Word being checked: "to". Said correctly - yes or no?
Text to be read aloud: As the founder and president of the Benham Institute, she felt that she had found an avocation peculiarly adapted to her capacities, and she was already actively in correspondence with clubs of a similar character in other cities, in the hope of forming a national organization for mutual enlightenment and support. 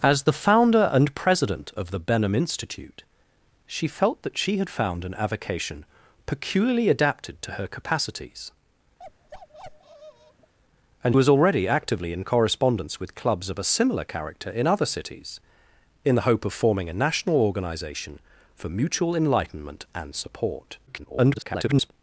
yes